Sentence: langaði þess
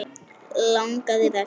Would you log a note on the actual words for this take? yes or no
no